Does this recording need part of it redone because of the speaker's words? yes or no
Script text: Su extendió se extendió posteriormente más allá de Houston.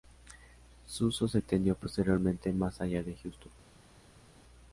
yes